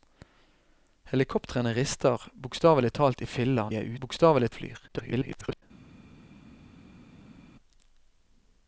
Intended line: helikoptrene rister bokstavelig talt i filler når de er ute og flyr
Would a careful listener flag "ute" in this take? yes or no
yes